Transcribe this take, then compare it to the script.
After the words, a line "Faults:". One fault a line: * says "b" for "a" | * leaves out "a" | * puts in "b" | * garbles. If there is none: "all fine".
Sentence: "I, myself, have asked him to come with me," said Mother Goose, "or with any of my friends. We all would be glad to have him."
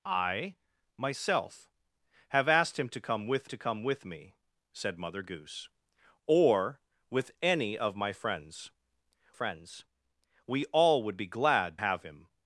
"I, myself, have asked him to come with to come with me," said Mother Goose, "or with any of my friends friends. We all would be glad have him."
Faults:
* puts in "to come with"
* puts in "friends"
* leaves out "to"